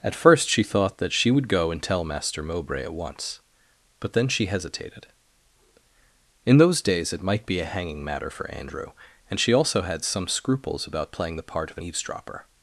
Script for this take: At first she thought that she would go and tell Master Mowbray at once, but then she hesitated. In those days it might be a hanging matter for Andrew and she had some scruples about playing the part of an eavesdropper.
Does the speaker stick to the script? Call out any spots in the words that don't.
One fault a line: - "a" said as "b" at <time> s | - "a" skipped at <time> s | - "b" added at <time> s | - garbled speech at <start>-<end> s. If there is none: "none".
- "also" added at 9.5 s